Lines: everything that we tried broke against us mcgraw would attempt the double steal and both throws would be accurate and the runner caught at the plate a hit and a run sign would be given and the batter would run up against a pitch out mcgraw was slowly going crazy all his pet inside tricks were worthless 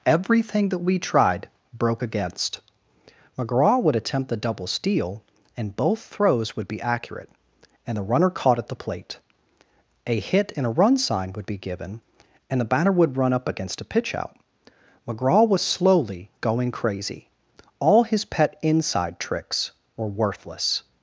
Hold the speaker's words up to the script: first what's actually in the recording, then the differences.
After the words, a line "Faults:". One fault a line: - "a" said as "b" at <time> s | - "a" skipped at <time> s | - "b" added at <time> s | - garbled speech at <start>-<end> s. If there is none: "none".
everything that we tried broke against mcgraw would attempt the double steal and both throws would be accurate and the runner caught at the plate a hit and a run sign would be given and the batter would run up against a pitch out mcgraw was slowly going crazy all his pet inside tricks were worthless
Faults:
- "us" skipped at 2.6 s